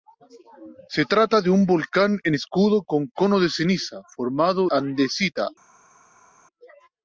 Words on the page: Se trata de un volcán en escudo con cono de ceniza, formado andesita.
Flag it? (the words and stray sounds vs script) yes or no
no